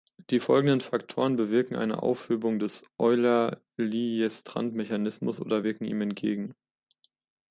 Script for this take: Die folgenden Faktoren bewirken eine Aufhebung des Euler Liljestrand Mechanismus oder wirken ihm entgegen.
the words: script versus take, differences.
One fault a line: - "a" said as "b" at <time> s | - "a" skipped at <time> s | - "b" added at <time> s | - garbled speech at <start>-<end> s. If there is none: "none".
none